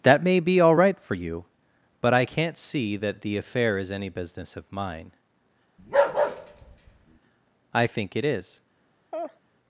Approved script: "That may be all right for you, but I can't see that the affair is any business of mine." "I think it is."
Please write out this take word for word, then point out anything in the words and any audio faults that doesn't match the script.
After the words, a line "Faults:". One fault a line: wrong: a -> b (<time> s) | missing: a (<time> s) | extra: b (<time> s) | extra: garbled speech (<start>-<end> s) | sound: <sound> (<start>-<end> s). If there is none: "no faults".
"That may be all right for you, but I can't see that the affair is any business of mine." "I think it is."
Faults:
sound: bark (5.8-7.2 s)
sound: laugh (9.1-9.4 s)